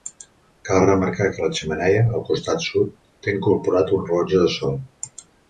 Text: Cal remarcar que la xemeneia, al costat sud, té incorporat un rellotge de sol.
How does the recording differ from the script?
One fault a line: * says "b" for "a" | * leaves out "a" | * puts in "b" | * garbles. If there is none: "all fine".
all fine